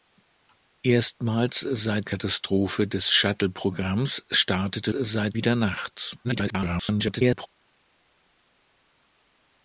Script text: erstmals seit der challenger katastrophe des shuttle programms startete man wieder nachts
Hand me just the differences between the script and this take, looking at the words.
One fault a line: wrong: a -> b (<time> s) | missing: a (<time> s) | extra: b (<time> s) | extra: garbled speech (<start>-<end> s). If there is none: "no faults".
missing: der challenger (2.1 s)
wrong: man -> seit (4.9 s)
extra: garbled speech (6.2-7.5 s)